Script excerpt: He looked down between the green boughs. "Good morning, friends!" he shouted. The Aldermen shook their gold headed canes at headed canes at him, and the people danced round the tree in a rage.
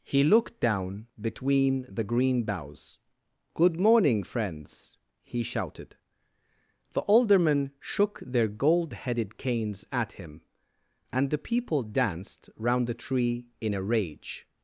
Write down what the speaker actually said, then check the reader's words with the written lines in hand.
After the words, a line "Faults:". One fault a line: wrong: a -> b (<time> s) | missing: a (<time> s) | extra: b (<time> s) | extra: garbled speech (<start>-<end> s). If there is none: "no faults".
He looked down between the green boughs. "Good morning, friends!" he shouted. The Aldermen shook their gold headed canes at him, and the people danced round the tree in a rage.
Faults:
missing: headed canes at (10.1 s)